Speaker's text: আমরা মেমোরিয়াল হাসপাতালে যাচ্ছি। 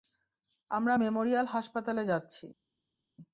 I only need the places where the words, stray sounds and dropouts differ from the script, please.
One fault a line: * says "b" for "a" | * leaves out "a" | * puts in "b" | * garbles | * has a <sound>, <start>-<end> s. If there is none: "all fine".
all fine